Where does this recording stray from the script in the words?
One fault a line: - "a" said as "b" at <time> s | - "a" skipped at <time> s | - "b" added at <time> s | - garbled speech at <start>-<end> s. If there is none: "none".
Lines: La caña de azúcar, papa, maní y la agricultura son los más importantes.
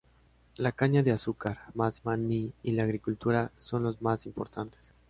- "papa" said as "más" at 1.7 s